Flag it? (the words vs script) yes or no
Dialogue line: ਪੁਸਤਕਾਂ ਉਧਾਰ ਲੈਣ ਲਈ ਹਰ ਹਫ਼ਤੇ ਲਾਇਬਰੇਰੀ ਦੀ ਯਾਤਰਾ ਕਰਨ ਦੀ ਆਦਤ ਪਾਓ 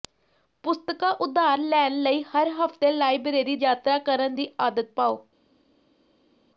yes